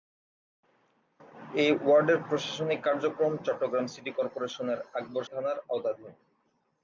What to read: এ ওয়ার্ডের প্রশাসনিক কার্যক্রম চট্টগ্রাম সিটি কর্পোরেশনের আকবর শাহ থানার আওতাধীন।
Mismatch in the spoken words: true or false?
true